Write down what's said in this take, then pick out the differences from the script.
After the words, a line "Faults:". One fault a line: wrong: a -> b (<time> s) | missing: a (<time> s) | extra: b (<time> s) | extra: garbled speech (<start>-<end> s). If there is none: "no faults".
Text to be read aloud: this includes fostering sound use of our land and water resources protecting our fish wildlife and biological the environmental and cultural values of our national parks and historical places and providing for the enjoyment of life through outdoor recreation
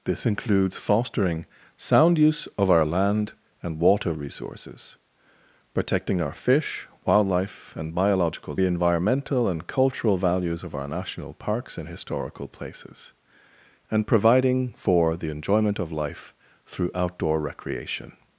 this includes fostering sound use of our land and water resources protecting our fish wildlife and biological the environmental and cultural values of our national parks and historical places and providing for the enjoyment of life through outdoor recreation
Faults:
no faults